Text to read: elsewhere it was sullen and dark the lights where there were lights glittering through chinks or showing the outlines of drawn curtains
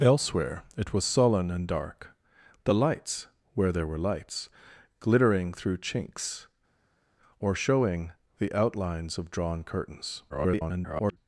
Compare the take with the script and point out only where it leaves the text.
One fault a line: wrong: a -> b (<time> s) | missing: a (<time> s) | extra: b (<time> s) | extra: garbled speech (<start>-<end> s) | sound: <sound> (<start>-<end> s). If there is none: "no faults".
extra: garbled speech (10.3-11.2 s)